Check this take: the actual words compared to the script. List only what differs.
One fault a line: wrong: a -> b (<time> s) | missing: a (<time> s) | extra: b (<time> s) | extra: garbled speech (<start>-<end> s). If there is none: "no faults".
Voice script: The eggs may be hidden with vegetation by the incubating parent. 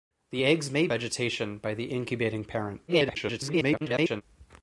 missing: be hidden with (0.9 s)
extra: garbled speech (2.9-4.2 s)